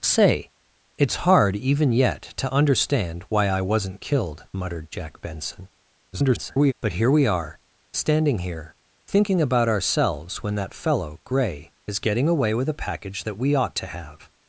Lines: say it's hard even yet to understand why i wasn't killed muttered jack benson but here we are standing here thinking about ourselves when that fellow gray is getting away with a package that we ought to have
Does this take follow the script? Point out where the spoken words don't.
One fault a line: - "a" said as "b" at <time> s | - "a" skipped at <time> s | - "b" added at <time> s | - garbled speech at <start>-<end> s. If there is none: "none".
- garbled speech at 6.1-6.7 s